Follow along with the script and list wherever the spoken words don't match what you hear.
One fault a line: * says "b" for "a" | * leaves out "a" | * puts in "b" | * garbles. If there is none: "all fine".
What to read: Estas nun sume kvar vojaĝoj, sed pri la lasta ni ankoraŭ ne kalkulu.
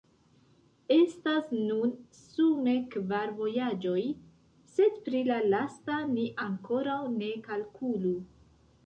all fine